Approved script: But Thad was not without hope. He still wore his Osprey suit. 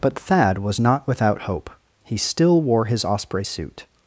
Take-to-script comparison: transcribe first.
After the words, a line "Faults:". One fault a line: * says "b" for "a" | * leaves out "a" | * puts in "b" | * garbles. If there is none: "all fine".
But Thad was not without hope. He still wore his Osprey suit.
Faults:
all fine